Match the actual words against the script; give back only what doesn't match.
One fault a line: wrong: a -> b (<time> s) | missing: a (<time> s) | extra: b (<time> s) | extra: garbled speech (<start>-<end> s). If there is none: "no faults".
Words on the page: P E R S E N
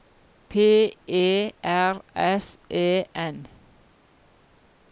no faults